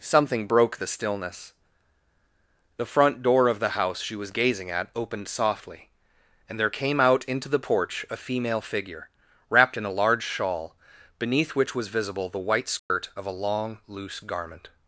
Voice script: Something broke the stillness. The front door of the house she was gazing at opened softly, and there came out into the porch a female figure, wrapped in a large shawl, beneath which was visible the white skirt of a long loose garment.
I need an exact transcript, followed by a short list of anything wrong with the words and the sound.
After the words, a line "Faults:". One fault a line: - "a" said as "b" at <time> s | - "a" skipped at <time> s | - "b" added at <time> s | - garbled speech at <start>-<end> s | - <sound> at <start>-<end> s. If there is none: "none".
Something broke the stillness. The front door of the house she was gazing at opened softly, and there came out into the porch a female figure, wrapped in a large shawl, beneath which was visible the white skirt of a long loose garment.
Faults:
- dropout at 12.8-12.9 s